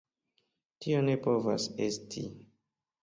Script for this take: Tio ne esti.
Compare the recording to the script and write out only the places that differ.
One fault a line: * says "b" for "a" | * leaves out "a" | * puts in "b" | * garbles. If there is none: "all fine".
* puts in "povas"